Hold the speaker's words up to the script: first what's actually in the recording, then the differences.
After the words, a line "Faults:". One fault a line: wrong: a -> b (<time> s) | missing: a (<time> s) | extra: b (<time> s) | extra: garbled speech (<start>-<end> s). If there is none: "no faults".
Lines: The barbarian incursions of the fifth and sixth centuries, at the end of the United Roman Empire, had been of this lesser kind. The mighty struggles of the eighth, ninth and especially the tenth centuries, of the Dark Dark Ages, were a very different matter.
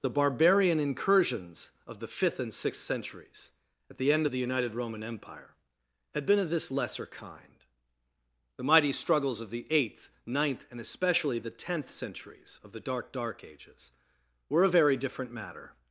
The barbarian incursions of the fifth and sixth centuries, at the end of the United Roman Empire, had been of this lesser kind. The mighty struggles of the eighth, ninth and especially the tenth centuries, of the Dark Dark Ages, were a very different matter.
Faults:
no faults